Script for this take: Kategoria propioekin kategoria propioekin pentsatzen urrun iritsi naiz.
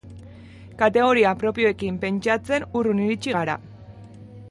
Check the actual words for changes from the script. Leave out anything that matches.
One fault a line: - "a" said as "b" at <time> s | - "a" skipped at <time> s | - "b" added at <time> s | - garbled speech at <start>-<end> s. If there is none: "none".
- "kategoria propioekin" skipped at 2.0 s
- "naiz" said as "gara" at 3.4 s